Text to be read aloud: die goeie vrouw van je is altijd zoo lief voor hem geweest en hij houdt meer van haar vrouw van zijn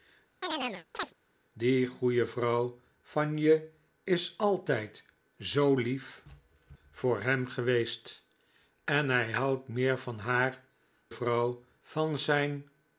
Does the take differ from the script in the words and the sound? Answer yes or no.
yes